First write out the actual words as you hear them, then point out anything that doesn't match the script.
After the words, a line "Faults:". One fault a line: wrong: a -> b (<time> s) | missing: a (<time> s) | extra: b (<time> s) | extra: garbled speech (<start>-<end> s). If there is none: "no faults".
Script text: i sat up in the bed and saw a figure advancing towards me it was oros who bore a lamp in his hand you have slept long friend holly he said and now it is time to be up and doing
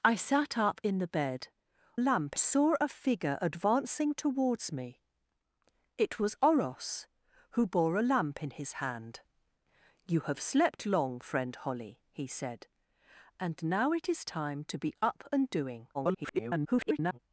i sat up in the bed lamp saw a figure advancing towards me it was oros who bore a lamp in his hand you have slept long friend holly he said and now it is time to be up and doing [garbled]
Faults:
wrong: and -> lamp (2.0 s)
extra: garbled speech (15.9-17.2 s)